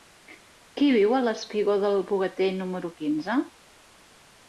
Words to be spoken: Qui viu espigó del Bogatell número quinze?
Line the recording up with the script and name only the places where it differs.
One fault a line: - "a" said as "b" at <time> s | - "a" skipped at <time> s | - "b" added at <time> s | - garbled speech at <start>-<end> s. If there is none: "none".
- "al" added at 1.2 s